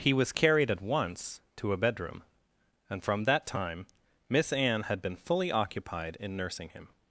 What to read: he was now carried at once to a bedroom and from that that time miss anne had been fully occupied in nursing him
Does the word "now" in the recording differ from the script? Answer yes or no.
yes